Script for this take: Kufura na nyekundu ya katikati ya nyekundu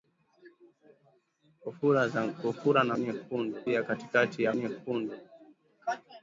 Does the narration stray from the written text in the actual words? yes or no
no